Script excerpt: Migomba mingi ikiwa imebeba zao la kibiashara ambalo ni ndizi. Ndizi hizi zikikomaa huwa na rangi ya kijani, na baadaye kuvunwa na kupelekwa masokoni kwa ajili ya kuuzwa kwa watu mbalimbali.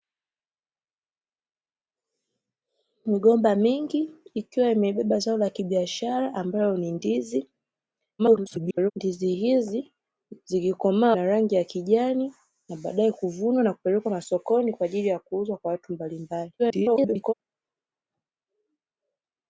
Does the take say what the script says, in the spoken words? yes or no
no